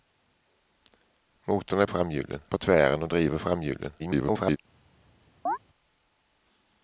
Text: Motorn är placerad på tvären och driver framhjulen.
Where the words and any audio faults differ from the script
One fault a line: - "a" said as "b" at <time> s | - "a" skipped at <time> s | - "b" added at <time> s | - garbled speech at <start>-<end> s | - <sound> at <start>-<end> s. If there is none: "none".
- "placerad" said as "framhjulen" at 1.9 s
- garbled speech at 4.0-4.6 s
- chirp at 5.5-5.6 s